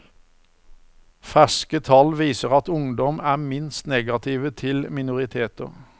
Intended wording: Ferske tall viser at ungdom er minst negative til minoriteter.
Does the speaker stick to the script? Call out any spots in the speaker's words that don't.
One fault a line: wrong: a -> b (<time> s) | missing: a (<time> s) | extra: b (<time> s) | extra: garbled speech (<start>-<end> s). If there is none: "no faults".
no faults